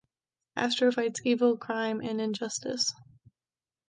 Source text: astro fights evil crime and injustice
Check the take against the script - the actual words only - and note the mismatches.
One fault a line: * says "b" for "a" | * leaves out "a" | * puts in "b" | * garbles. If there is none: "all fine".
all fine